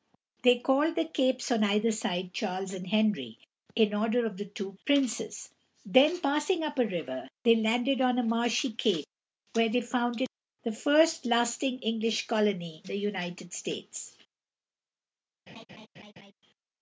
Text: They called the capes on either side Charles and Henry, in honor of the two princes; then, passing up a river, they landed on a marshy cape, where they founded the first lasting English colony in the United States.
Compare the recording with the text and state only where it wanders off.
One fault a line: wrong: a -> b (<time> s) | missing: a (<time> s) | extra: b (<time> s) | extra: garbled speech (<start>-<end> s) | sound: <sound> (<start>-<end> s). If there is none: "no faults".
missing: in (12.8 s)
sound: laugh (15.5-16.3 s)